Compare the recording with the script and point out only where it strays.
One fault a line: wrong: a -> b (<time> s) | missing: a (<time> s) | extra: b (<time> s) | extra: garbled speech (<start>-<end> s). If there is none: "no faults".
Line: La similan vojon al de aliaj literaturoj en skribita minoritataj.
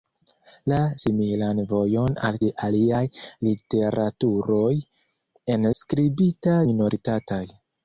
no faults